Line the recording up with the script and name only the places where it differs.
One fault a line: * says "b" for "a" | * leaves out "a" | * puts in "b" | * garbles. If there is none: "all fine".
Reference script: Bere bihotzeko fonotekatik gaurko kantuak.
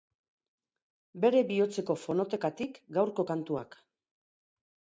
all fine